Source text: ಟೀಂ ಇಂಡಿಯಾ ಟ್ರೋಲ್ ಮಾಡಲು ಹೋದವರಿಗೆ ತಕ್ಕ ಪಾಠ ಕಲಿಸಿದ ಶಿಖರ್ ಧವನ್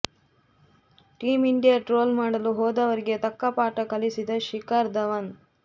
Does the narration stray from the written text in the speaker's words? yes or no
no